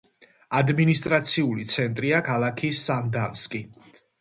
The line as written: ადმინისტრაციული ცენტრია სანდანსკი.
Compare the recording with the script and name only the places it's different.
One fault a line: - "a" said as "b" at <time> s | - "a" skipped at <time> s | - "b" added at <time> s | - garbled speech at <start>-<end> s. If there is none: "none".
- "ქალაქი" added at 2.3 s